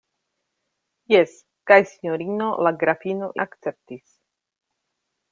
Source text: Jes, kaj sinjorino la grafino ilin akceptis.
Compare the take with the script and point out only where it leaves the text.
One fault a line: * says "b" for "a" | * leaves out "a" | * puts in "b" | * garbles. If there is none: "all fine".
* leaves out "ilin"